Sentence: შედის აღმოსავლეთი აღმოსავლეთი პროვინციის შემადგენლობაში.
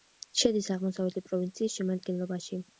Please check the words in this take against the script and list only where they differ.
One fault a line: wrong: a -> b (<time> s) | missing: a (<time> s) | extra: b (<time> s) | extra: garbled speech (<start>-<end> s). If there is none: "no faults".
missing: აღმოსავლეთი (1.2 s)